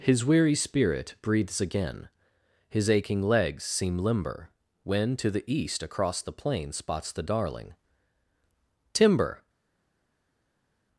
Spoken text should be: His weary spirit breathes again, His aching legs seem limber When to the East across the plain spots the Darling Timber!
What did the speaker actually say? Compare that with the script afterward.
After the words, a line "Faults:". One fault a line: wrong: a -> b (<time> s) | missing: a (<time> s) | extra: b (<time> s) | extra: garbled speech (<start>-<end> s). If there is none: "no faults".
His weary spirit breathes again, His aching legs seem limber When to the East across the plain spots the Darling Timber!
Faults:
no faults